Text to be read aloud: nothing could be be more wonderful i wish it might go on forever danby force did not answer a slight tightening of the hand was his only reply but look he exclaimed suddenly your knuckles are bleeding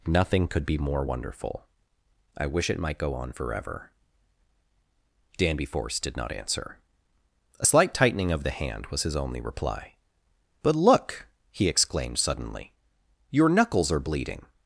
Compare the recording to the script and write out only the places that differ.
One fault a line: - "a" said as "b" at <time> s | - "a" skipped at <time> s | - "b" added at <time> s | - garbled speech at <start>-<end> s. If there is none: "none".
- "be" skipped at 0.8 s